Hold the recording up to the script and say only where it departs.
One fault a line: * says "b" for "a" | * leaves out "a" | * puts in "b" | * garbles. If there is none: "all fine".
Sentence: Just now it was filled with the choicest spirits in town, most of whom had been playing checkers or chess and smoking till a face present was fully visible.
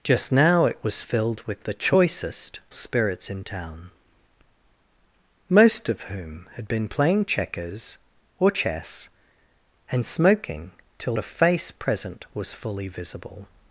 all fine